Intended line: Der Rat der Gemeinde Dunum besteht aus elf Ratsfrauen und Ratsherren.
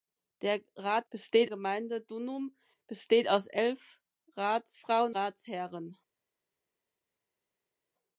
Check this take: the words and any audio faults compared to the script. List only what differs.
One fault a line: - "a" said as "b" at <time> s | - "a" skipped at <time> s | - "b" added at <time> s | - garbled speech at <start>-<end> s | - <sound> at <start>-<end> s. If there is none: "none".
- "der" said as "besteht" at 1.1 s
- "und" skipped at 5.2 s